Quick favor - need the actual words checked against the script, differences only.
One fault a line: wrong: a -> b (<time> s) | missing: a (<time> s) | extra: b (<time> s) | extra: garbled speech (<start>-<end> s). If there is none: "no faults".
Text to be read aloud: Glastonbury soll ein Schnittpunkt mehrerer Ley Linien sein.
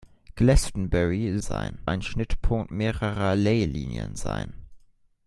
wrong: soll -> sein (1.4 s)